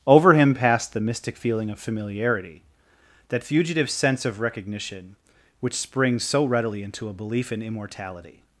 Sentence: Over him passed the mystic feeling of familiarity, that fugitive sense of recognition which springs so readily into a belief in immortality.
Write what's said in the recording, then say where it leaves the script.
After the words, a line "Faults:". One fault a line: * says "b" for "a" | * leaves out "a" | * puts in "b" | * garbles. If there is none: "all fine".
Over him passed the mystic feeling of familiarity, that fugitive sense of recognition which springs so readily into a belief in immortality.
Faults:
all fine